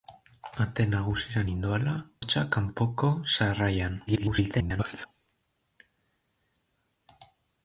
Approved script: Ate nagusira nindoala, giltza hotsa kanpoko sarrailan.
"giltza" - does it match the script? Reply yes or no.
no